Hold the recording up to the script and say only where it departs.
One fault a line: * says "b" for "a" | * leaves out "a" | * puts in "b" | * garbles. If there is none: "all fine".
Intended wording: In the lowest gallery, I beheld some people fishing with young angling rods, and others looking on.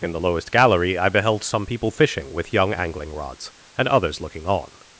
all fine